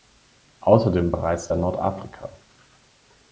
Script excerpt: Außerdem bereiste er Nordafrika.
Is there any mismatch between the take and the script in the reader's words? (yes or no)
no